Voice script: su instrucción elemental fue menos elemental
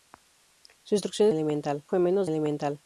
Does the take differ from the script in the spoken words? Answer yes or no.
no